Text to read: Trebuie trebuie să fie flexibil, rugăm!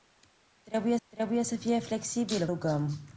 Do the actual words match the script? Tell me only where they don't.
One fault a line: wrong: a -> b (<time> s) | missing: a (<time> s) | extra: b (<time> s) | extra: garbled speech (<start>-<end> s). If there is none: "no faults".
no faults